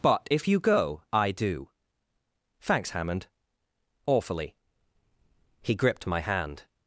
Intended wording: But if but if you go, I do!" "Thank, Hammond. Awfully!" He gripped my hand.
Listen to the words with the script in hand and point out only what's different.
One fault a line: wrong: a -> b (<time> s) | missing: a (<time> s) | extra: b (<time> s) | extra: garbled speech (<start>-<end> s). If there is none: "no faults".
missing: but if (0.5 s)
wrong: Thank -> Thanks (2.6 s)